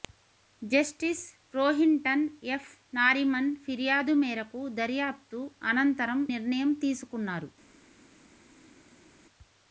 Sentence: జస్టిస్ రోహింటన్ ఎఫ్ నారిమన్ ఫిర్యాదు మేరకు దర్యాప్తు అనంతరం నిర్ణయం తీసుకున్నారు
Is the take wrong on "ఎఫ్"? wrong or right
right